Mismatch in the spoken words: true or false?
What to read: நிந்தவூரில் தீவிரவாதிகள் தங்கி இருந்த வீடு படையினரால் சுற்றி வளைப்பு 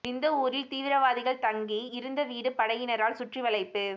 false